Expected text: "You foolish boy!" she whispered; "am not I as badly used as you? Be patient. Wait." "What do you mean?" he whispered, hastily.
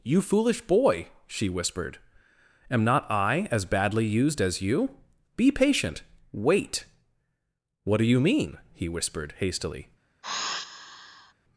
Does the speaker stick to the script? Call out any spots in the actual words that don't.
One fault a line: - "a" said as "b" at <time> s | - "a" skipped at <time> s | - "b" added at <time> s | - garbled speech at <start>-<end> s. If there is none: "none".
none